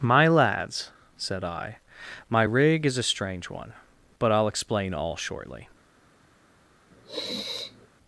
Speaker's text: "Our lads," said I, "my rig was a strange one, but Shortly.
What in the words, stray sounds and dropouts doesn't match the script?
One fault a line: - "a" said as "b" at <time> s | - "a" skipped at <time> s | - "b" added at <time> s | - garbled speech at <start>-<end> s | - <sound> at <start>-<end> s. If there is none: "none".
- "Our" said as "My" at 0.0 s
- "was" said as "is" at 2.8 s
- "I'll explain all" added at 4.3 s
- sniff at 6.9-7.9 s